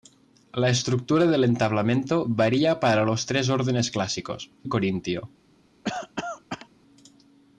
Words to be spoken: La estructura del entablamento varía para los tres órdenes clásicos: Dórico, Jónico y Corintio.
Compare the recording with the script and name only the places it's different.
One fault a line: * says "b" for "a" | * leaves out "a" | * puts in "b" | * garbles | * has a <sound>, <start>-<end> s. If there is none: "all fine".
* leaves out "Dórico Jónico"
* has a cough, 5.8-6.7 s